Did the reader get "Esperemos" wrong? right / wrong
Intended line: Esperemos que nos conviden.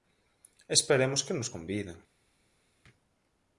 right